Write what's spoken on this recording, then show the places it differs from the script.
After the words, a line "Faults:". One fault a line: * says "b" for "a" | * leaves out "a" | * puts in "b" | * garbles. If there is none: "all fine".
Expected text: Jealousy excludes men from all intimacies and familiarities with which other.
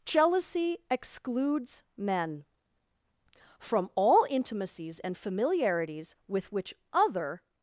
Jealousy excludes men from all intimacies and familiarities with which other.
Faults:
all fine